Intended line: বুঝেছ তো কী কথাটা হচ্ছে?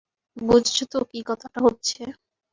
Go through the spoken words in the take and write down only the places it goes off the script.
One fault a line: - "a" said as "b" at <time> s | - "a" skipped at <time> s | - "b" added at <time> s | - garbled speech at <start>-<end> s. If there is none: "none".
none